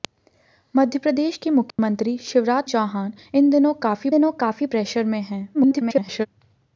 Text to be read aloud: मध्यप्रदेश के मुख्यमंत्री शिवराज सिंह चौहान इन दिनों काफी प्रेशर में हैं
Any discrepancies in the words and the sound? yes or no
yes